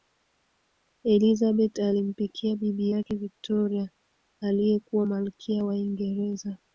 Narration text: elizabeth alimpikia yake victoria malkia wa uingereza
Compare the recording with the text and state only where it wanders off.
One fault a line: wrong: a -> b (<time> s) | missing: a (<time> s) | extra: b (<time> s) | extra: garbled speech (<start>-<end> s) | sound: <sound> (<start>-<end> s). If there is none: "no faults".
extra: bibi (2.6 s)
extra: aliyekuwa (4.4 s)